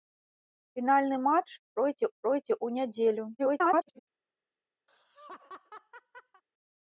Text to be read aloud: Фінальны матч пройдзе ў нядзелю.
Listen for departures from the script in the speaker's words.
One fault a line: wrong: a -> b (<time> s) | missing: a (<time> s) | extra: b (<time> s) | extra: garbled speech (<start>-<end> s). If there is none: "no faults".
extra: пройдзе (2.2 s)
extra: garbled speech (3.4-4.0 s)